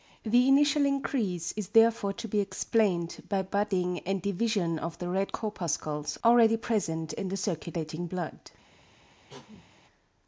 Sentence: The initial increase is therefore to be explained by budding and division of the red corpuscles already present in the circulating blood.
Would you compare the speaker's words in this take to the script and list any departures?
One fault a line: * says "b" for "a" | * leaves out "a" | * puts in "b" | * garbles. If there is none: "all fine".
all fine